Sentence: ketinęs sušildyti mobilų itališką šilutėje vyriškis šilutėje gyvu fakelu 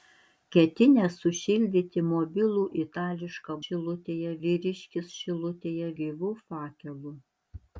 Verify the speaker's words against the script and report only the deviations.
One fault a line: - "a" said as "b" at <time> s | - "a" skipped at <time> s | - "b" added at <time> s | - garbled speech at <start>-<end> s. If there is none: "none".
none